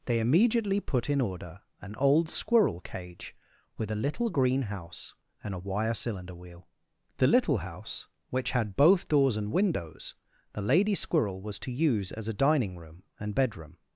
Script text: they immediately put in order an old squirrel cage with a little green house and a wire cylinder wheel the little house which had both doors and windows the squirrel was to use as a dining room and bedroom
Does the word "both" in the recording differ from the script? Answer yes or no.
no